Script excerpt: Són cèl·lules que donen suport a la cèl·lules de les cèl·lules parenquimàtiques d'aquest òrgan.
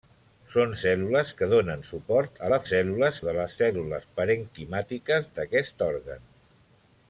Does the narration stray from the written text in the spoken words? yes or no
no